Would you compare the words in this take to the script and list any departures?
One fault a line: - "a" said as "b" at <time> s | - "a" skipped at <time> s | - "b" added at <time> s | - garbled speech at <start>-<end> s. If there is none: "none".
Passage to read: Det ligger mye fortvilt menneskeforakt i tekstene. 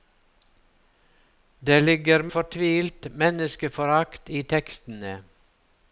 - "mye" skipped at 2.2 s